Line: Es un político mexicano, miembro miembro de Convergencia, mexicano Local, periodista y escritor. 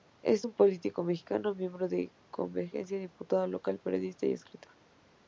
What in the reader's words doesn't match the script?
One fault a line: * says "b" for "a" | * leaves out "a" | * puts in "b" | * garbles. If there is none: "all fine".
* leaves out "miembro"
* says "diputado" for "mexicano"